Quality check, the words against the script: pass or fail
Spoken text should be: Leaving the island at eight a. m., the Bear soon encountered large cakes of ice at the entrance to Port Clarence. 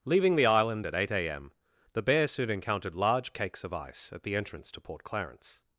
pass